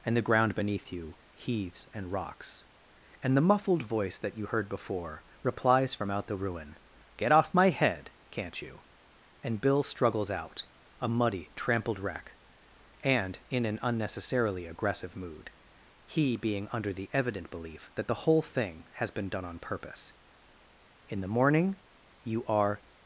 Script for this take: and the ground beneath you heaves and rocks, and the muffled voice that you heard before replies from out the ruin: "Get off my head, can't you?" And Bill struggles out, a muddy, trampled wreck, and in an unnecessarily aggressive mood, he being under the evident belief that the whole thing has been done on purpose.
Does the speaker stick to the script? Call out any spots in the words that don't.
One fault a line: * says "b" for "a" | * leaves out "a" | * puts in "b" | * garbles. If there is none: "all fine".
* puts in "In the morning you are"